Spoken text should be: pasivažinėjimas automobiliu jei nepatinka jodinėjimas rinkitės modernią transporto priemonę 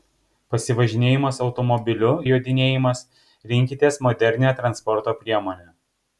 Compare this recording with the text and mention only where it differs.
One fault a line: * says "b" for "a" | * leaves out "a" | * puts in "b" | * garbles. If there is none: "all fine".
* leaves out "jei nepatinka"